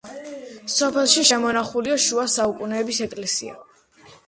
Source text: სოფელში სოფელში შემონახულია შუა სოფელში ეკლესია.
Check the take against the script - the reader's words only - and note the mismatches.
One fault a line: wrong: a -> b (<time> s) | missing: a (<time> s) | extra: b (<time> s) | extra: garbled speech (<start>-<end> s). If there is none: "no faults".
missing: სოფელში (1.2 s)
wrong: სოფელში -> საუკუნეების (2.3 s)